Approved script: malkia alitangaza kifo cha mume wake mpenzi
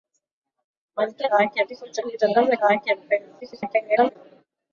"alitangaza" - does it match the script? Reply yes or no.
no